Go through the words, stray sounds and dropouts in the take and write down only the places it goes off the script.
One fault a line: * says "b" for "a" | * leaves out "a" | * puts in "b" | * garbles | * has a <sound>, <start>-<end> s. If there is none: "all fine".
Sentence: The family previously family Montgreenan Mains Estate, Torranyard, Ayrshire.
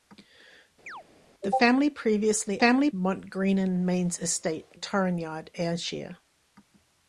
* has a chirp, 0.9-1.0 s